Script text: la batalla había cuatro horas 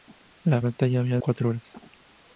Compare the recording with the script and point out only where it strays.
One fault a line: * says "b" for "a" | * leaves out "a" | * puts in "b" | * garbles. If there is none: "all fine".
all fine